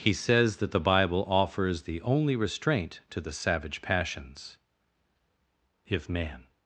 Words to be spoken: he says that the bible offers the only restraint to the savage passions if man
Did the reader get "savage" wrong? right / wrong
right